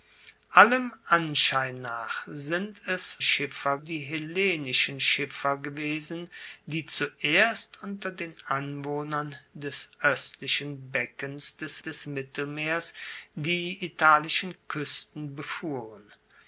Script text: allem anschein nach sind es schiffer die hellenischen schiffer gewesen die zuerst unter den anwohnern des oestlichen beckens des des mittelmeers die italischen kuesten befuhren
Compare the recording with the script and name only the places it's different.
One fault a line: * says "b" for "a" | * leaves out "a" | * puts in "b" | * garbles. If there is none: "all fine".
all fine